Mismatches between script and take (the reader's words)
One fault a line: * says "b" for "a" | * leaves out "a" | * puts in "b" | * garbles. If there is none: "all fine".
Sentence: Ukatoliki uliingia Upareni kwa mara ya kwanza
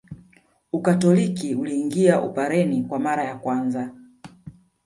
all fine